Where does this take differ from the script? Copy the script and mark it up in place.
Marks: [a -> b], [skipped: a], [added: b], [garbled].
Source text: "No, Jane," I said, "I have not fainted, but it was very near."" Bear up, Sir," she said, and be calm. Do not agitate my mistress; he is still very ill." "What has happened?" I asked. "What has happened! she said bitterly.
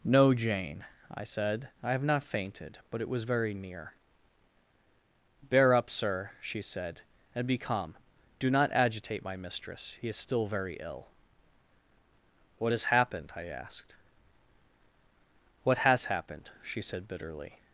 "No, Jane," I said, "I have not fainted, but it was very near."" Bear up, Sir," she said, and be calm. Do not agitate my mistress; he is still very ill." "What has happened?" I asked. "What has happened! she said bitterly.